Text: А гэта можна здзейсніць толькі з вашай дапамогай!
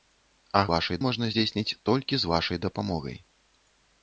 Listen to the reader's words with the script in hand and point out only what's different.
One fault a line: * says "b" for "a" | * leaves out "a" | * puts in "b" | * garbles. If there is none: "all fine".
* says "вашай" for "гэта"